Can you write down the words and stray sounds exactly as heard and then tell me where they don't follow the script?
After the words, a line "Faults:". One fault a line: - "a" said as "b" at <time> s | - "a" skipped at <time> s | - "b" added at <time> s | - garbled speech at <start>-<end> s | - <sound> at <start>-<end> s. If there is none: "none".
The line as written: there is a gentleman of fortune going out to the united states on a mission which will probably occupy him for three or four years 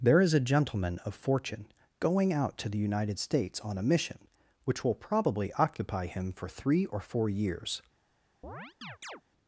there is a gentleman of fortune going out to the united states on a mission which will probably occupy him for three or four years
Faults:
- chirp at 8.4-9.2 s